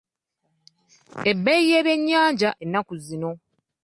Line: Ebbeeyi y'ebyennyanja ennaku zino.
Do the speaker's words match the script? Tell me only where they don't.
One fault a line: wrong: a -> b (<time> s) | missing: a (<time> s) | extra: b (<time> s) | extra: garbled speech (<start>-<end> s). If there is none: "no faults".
no faults